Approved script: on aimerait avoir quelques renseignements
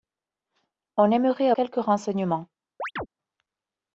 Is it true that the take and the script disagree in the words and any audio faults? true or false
true